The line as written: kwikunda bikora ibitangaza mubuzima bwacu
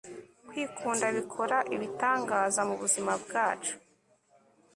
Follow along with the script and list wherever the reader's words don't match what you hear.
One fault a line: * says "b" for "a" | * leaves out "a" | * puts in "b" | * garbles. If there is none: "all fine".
all fine